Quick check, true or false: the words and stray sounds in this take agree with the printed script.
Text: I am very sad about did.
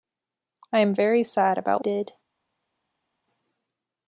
true